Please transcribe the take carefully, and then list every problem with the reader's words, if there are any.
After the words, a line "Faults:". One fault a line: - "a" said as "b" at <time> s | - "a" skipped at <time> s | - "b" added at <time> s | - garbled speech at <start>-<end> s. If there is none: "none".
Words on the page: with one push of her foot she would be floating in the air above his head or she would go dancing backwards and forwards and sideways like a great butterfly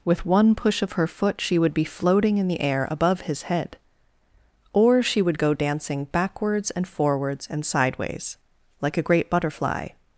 with one push of her foot she would be floating in the air above his head or she would go dancing backwards and forwards and sideways like a great butterfly
Faults:
none